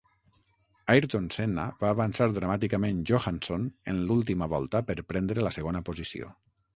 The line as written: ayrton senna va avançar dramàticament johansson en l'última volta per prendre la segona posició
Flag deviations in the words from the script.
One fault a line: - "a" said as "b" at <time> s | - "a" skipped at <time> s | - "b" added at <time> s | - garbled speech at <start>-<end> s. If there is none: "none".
none